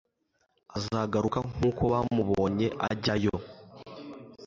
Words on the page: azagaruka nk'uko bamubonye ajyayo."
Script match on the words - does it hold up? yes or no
yes